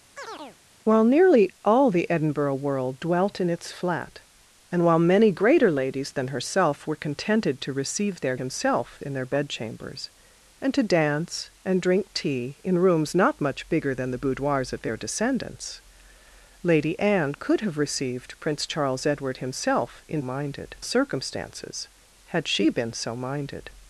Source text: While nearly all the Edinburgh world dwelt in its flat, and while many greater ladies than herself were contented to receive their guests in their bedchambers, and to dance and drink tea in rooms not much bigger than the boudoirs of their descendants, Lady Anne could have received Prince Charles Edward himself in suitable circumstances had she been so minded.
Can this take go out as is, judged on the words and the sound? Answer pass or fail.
fail